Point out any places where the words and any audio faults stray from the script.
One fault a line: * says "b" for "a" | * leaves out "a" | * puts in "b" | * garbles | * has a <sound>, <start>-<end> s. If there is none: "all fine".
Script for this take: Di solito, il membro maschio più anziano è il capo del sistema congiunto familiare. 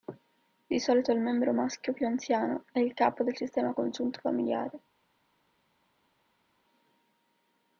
all fine